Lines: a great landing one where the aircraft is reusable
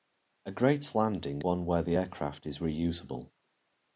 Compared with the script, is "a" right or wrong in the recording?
right